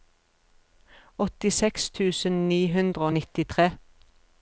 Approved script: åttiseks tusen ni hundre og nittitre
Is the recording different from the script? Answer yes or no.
no